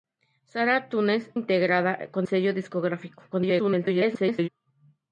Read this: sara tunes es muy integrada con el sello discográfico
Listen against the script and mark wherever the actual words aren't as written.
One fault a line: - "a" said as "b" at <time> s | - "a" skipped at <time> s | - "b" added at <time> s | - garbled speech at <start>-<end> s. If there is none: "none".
- "es muy" skipped at 1.3 s
- "el" skipped at 2.3 s
- garbled speech at 3.3-4.5 s